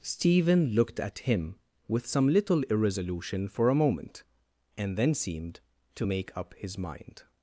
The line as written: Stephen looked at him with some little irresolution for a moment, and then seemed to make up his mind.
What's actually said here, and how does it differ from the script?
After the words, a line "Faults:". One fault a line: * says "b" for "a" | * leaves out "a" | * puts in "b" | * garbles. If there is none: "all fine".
Stephen looked at him with some little irresolution for a moment, and then seemed to make up his mind.
Faults:
all fine